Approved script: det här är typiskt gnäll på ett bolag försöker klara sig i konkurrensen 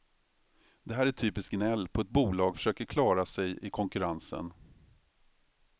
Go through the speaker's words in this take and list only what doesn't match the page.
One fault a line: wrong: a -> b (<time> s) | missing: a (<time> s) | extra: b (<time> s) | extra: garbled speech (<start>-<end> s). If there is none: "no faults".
no faults